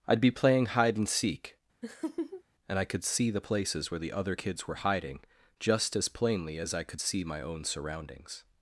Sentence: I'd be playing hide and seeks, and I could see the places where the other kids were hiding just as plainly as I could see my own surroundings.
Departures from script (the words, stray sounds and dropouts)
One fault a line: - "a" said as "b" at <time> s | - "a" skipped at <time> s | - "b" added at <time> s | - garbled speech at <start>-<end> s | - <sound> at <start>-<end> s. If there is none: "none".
- "seeks" said as "seek" at 1.1 s
- laugh at 1.8-2.4 s